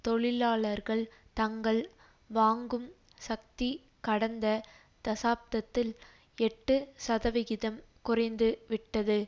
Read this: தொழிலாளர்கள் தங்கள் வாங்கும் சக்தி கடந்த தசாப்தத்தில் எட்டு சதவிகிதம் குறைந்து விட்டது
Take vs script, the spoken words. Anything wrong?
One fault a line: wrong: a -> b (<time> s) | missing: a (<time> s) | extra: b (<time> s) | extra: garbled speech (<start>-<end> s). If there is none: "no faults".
no faults